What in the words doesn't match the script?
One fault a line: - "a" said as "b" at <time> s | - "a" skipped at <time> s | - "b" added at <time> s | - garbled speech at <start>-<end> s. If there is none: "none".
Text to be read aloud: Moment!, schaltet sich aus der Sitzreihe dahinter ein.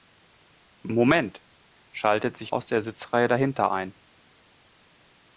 none